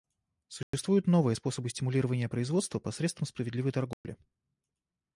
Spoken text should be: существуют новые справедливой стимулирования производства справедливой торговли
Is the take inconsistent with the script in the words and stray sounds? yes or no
yes